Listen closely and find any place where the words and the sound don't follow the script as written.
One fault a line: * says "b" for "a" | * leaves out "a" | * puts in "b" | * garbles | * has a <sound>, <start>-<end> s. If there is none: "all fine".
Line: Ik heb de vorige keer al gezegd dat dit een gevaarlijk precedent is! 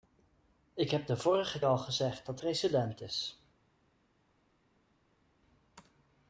* leaves out "keer"
* leaves out "dit een gevaarlijk"